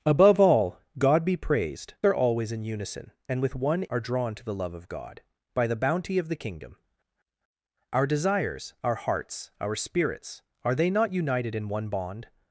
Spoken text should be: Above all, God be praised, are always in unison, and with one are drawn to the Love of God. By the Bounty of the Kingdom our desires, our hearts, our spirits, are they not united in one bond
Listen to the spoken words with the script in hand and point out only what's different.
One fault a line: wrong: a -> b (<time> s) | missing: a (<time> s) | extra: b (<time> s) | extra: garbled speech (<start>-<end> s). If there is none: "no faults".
no faults